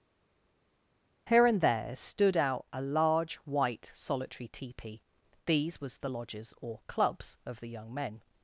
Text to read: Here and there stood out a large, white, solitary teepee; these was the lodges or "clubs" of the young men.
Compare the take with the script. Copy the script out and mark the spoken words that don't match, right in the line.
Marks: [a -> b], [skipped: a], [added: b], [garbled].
Here and there stood out a large, white, solitary teepee; these was the lodges or "clubs" of the young men.